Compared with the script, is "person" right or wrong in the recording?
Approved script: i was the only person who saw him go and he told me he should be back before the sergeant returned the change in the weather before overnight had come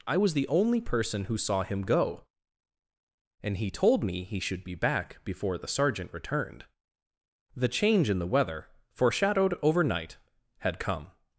right